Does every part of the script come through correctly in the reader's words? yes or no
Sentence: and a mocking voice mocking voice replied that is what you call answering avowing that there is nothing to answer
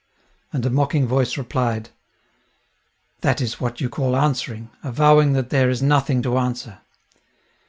no